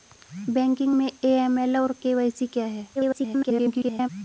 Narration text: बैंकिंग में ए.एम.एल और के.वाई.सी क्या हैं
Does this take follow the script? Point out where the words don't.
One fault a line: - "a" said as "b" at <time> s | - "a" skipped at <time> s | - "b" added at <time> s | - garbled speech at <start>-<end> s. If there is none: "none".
- garbled speech at 3.0-4.1 s